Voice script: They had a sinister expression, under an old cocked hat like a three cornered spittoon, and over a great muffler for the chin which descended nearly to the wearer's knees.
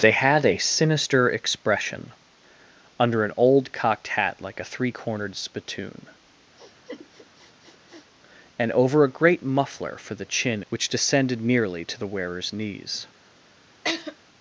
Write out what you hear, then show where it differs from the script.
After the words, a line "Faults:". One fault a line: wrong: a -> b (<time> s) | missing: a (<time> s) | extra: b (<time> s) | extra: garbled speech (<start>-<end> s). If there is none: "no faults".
They had a sinister expression, under an old cocked hat like a three cornered spittoon, and over a great muffler for the chin which descended nearly to the wearer's knees.
Faults:
no faults